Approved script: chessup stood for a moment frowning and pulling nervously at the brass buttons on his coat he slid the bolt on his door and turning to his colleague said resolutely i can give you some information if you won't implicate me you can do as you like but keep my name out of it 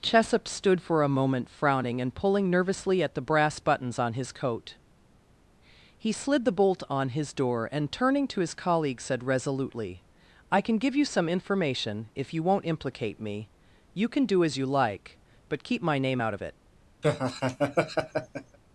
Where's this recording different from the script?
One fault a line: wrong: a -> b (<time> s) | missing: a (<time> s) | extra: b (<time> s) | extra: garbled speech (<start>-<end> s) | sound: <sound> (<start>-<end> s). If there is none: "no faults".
sound: laugh (17.0-18.6 s)